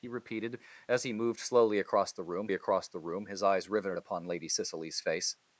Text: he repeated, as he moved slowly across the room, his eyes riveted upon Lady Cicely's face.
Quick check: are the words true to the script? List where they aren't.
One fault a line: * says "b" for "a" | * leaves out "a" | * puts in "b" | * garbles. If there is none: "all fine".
* puts in "across the room"